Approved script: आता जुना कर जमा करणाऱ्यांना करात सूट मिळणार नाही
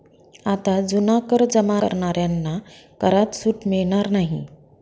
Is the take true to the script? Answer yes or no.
yes